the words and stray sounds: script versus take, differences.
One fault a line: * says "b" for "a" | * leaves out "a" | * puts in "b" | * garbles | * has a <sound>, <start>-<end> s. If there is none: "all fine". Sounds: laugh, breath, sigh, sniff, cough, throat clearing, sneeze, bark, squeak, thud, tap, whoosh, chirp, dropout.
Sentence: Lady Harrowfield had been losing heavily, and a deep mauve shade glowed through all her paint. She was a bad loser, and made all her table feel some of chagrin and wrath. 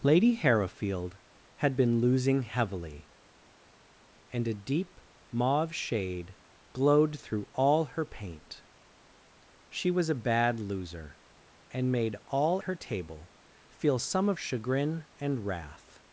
all fine